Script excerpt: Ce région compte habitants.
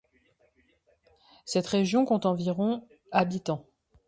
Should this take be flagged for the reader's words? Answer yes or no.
yes